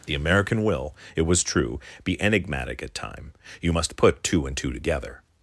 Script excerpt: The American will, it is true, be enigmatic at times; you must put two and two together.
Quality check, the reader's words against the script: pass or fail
fail